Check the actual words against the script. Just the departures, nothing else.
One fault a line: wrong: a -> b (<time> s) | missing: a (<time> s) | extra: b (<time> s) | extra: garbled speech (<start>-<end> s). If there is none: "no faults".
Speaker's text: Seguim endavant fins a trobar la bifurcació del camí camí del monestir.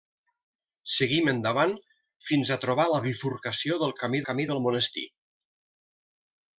no faults